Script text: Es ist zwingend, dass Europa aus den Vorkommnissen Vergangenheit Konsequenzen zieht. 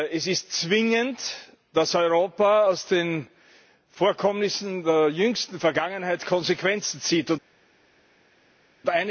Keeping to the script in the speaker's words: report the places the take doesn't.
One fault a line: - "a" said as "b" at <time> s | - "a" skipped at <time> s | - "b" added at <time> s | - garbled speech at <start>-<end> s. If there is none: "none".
- "der jüngsten" added at 4.8 s